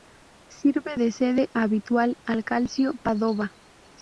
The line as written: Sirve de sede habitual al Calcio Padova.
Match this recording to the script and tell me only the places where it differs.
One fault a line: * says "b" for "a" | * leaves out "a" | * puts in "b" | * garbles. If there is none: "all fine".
all fine